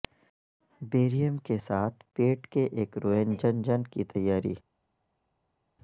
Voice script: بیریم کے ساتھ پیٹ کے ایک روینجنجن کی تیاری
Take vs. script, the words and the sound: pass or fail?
pass